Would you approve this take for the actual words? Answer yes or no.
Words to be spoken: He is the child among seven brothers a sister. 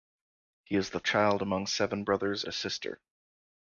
yes